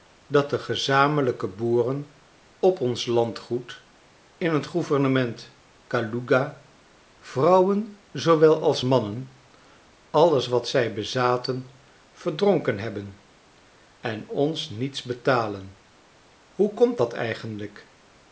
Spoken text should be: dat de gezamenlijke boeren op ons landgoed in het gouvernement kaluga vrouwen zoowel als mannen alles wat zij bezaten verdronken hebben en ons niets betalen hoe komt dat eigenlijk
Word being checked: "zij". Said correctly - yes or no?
yes